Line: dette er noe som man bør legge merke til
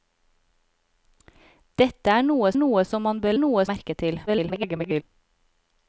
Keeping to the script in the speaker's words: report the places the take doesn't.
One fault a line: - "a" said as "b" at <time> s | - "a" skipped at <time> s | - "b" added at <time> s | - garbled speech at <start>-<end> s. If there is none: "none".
- "noe" added at 2.6 s
- "legge" said as "noe" at 3.4 s
- garbled speech at 4.3-5.0 s